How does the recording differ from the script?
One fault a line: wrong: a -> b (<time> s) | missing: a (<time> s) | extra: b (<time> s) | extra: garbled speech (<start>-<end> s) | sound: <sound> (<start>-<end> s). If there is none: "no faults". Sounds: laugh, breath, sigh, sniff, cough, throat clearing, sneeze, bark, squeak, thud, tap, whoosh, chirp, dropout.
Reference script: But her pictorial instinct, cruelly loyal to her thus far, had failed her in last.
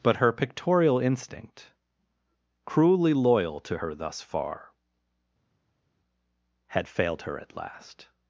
wrong: in -> at (7.4 s)